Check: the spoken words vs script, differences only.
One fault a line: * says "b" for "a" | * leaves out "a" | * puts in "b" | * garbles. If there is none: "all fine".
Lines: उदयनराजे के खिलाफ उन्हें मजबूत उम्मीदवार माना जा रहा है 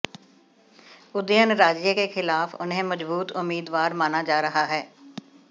all fine